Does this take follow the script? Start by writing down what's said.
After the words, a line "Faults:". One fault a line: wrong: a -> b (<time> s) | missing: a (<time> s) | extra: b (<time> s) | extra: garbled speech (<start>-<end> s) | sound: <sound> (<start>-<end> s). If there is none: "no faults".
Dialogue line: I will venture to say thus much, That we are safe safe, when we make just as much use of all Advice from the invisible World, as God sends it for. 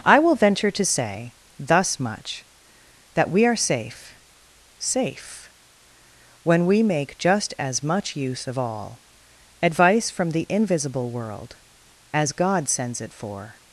I will venture to say thus much, That we are safe safe, when we make just as much use of all Advice from the invisible World, as God sends it for.
Faults:
no faults